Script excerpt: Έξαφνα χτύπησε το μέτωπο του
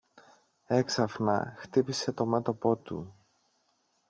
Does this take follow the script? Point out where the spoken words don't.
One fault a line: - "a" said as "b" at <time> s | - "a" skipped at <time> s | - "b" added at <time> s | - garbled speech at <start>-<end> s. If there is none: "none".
none